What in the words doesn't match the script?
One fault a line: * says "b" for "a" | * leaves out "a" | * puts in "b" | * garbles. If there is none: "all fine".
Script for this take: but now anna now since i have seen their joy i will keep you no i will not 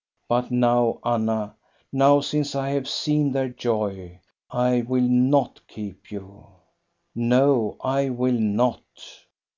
* puts in "not"